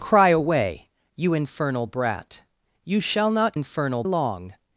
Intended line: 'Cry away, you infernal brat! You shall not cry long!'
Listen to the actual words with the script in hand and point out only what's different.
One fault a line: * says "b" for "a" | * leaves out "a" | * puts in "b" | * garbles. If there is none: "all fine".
* says "infernal" for "cry"